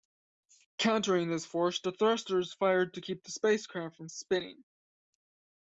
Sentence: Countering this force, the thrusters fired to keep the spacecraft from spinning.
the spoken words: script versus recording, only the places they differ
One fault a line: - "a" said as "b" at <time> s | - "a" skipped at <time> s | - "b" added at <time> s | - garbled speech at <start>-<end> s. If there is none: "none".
none